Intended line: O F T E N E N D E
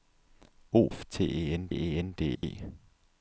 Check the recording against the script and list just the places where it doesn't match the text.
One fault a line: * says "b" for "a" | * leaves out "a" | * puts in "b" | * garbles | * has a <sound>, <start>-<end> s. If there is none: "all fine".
* has a dropout, 2.4-2.4 s